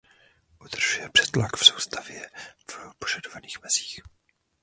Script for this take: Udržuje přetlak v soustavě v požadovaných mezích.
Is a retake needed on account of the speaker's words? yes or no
no